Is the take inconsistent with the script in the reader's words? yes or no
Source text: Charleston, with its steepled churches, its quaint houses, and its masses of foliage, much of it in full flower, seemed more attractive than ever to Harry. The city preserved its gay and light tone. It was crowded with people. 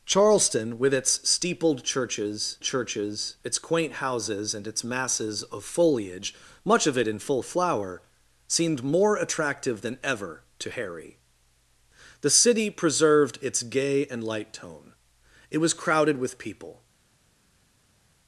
yes